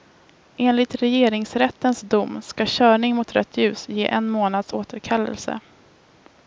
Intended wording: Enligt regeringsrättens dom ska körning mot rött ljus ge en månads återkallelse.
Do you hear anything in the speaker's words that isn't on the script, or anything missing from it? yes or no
no